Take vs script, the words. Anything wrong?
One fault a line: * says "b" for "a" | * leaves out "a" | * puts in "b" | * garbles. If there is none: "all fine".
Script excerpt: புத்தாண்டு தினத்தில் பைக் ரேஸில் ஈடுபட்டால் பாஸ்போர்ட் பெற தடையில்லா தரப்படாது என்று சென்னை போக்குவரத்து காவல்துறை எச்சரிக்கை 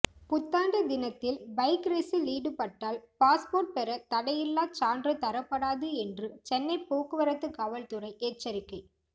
* puts in "சான்று"